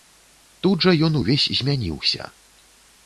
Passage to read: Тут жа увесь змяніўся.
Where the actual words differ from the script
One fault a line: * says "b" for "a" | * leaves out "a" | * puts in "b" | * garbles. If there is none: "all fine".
* puts in "ён"